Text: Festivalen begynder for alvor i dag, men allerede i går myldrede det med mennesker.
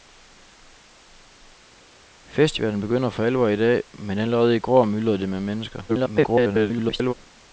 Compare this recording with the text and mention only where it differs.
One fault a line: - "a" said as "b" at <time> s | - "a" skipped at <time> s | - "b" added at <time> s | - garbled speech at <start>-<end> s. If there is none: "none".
- garbled speech at 5.9-7.1 s